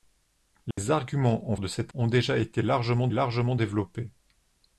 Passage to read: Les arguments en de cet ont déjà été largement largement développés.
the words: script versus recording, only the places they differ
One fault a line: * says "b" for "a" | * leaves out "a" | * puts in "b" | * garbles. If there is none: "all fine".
all fine